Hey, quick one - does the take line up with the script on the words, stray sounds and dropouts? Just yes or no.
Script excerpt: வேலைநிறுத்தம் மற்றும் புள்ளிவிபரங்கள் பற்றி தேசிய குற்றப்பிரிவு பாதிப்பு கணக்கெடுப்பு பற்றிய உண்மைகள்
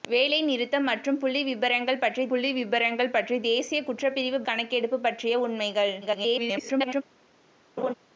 no